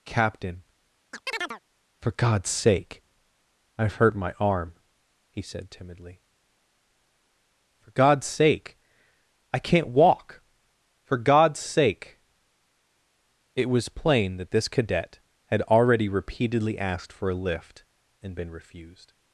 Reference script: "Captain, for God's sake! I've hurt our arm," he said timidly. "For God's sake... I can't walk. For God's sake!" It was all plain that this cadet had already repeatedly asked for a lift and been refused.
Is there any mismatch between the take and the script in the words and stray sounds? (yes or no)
yes